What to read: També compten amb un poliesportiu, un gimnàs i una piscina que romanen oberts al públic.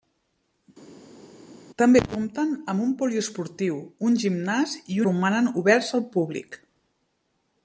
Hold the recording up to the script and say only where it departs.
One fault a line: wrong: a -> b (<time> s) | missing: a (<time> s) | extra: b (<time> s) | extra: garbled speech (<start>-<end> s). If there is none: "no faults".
missing: una piscina que (5.0 s)